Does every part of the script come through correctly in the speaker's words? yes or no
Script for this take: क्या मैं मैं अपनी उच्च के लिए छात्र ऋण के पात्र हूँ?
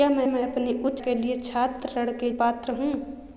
yes